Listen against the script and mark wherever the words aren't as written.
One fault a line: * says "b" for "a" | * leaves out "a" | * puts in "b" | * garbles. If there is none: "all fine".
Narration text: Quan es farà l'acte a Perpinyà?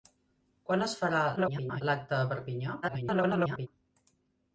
* garbles
* garbles